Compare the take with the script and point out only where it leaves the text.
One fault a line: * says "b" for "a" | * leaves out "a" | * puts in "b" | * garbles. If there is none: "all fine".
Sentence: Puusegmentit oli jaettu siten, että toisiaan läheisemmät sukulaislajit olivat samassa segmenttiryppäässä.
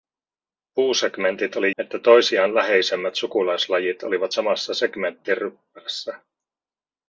* leaves out "jaettu siten"